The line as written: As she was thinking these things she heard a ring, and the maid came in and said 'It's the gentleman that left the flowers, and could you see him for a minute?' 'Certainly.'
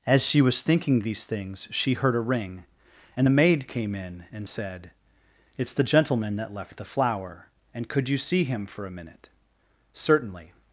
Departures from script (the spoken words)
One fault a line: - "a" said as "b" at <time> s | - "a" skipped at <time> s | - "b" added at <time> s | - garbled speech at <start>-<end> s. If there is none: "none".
- "flowers" said as "flower" at 6.8 s